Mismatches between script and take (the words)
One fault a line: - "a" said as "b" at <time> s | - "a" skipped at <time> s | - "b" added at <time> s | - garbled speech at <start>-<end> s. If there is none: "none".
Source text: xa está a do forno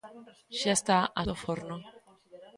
none